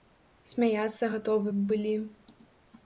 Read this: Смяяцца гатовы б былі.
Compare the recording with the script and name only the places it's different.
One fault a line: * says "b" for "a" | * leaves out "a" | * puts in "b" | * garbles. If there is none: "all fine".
all fine